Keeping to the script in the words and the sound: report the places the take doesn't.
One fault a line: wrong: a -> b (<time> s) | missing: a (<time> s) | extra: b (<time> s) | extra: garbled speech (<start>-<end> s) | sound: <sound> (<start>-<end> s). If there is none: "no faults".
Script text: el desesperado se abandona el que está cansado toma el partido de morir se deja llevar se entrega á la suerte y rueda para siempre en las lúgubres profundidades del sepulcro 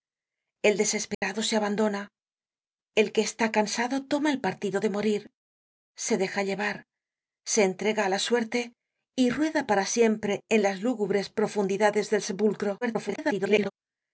sound: dropout (1.1-1.2 s)
extra: garbled speech (12.8-13.7 s)